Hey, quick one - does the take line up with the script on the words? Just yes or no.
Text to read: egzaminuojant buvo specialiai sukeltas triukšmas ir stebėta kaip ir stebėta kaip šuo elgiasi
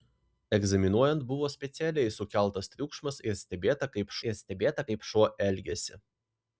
yes